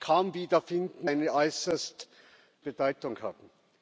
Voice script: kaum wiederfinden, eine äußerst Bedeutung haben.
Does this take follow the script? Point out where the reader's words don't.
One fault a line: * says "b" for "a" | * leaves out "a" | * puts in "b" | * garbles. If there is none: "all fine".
all fine